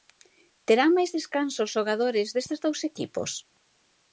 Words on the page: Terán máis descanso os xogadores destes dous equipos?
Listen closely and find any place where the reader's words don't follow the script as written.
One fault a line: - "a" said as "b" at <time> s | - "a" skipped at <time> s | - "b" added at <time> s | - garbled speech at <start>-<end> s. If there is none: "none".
none